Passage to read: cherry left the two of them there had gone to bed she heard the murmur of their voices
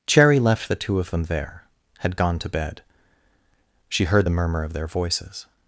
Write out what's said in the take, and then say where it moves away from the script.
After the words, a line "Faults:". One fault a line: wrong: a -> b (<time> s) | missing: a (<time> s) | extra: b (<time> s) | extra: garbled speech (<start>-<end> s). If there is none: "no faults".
cherry left the two of them there had gone to bed she heard the murmur of their voices
Faults:
no faults